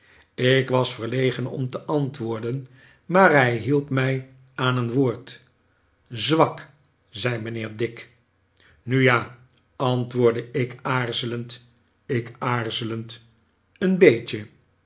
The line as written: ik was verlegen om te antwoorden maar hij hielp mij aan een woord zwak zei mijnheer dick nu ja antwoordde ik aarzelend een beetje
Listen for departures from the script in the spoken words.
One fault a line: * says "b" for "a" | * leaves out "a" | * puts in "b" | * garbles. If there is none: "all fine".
* puts in "ik aarzelend"